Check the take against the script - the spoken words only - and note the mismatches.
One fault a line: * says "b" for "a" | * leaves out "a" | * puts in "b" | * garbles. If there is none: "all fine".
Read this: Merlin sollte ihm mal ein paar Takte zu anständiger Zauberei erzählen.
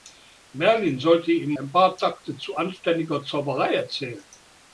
* leaves out "mal"